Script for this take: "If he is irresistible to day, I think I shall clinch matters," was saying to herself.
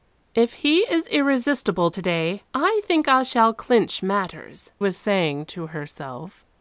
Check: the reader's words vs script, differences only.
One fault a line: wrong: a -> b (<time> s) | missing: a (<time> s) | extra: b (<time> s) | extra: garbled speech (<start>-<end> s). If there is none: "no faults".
no faults